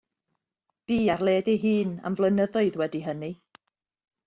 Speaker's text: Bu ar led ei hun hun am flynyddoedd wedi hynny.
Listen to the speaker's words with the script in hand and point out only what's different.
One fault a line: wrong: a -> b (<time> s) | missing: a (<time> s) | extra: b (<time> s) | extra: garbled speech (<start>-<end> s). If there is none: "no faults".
missing: hun (1.9 s)